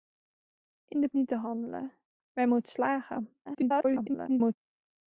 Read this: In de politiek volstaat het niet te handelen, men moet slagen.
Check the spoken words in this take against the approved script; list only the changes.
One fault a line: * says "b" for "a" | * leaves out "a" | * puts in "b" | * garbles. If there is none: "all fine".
* leaves out "politiek volstaat het"
* garbles